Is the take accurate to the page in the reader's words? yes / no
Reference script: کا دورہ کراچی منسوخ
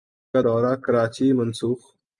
yes